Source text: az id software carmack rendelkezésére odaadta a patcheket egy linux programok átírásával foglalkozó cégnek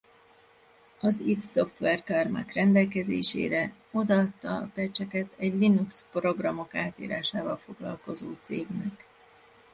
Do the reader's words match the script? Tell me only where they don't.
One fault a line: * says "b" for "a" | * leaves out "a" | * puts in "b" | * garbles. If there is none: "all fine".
all fine